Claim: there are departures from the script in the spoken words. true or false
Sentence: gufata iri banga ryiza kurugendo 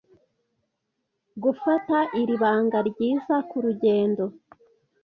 false